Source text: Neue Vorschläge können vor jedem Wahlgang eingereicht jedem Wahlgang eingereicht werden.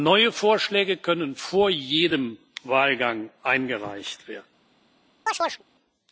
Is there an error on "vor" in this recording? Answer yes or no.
no